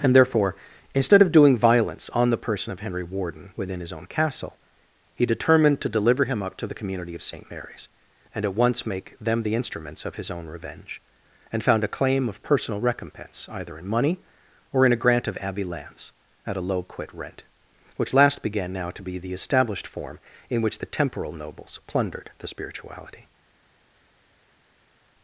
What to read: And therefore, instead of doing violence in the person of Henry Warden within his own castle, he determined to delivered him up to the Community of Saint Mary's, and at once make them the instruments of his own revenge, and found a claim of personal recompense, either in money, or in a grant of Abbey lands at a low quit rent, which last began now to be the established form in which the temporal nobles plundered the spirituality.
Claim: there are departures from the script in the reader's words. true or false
true